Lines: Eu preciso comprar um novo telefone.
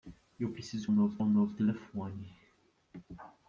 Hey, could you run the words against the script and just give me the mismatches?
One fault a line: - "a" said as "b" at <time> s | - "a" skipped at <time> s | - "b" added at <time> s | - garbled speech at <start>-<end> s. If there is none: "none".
- "comprar" said as "novo" at 0.9 s